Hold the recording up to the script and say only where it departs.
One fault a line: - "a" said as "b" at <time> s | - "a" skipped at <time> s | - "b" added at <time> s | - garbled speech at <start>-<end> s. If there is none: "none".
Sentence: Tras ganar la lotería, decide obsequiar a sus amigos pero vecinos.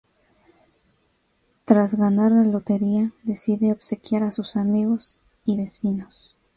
- "pero" said as "y" at 5.4 s